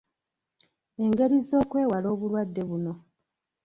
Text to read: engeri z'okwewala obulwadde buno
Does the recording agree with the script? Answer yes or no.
yes